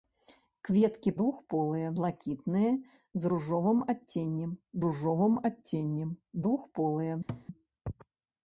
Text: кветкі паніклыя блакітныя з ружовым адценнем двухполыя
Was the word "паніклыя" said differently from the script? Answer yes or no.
yes